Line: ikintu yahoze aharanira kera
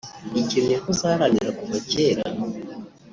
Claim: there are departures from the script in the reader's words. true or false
true